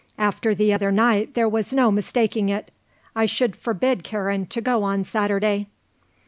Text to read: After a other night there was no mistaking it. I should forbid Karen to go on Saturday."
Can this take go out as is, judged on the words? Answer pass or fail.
fail